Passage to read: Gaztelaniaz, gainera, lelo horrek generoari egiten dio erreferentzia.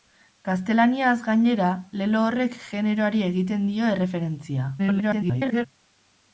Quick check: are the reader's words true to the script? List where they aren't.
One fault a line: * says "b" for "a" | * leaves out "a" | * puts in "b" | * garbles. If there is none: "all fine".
* garbles